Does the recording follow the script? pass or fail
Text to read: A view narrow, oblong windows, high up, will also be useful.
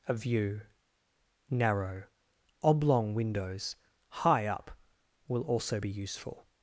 pass